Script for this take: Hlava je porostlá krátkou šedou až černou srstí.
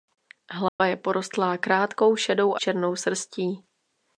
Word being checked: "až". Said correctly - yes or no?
no